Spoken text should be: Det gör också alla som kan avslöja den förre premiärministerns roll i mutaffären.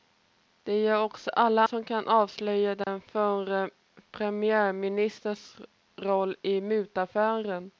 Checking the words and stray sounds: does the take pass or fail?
fail